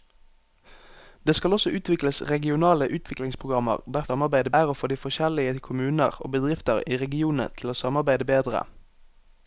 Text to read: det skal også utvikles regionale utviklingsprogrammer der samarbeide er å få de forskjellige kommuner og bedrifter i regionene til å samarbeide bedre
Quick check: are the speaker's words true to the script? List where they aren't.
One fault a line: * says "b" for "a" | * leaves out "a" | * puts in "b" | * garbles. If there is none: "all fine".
all fine